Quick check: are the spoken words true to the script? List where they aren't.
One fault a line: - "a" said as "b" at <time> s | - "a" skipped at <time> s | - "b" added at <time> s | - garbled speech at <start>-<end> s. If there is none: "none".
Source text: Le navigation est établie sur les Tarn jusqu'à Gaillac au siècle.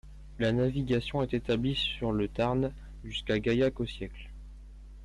- "Le" said as "La" at 0.4 s
- "les" said as "le" at 2.1 s